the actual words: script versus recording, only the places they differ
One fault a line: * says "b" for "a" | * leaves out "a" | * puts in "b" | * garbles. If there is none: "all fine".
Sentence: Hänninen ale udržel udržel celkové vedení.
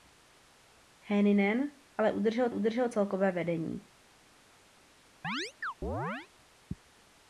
all fine